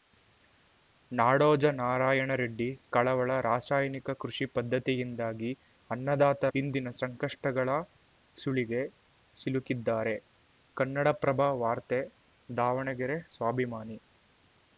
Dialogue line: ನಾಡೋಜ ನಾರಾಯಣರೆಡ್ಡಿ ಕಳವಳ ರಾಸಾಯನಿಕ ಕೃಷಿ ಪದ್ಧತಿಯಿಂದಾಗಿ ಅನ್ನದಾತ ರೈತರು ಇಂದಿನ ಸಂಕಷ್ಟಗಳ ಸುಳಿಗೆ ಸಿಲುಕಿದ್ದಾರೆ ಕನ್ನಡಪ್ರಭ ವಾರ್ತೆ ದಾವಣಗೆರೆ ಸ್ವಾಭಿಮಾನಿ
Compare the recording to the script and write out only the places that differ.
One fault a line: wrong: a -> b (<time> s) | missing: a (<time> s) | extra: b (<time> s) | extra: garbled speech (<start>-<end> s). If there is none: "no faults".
missing: ರೈತರು (6.5 s)